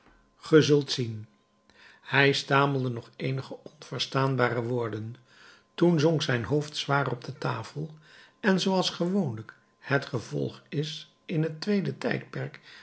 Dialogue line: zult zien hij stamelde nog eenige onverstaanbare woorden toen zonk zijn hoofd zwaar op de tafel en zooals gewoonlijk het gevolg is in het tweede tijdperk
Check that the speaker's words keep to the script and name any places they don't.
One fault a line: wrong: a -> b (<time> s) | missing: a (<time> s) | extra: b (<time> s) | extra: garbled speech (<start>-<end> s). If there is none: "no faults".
no faults